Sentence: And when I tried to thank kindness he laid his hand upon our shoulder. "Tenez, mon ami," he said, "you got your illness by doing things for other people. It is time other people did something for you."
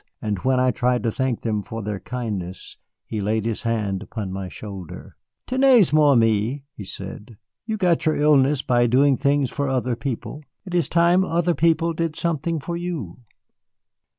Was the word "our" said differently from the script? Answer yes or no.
yes